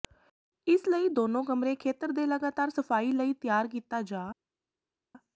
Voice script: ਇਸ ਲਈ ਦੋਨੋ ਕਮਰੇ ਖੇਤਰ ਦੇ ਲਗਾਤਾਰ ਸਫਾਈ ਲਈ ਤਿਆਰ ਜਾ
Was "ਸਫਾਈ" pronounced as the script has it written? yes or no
yes